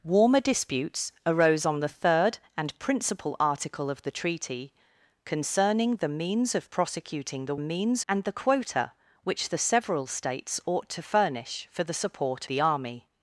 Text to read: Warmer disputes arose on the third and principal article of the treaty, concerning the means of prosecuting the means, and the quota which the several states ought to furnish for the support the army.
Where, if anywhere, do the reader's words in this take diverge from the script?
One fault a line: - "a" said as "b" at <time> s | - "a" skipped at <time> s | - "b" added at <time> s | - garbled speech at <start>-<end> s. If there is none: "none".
none